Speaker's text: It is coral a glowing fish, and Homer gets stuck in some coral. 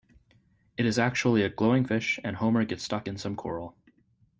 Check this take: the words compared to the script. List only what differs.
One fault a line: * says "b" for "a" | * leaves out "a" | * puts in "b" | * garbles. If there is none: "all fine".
* says "actually" for "coral"